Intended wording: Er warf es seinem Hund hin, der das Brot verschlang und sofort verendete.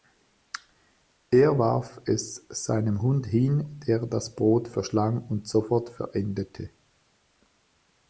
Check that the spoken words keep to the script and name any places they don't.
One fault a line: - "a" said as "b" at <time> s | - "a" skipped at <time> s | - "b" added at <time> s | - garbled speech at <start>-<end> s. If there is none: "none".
none